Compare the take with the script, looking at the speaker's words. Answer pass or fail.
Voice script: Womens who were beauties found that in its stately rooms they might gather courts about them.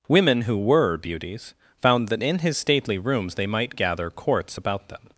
fail